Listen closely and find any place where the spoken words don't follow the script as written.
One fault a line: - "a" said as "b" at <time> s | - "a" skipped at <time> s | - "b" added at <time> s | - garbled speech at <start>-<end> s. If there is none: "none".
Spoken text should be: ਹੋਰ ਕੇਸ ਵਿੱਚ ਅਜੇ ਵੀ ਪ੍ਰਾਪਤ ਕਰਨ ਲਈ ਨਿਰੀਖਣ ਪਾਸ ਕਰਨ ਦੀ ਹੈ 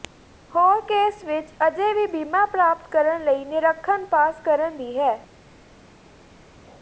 - "ਬੀਮਾ" added at 2.1 s